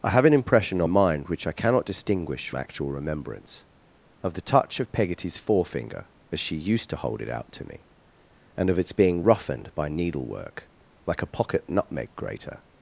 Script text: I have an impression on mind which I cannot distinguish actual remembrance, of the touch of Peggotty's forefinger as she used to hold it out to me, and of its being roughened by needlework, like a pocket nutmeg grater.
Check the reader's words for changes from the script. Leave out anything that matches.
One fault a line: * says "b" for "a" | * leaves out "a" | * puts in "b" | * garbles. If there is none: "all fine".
all fine